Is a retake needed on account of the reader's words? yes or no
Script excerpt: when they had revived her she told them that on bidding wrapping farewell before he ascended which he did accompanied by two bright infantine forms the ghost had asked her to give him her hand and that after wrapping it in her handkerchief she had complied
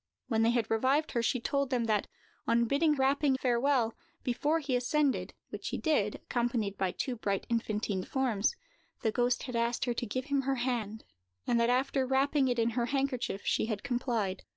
no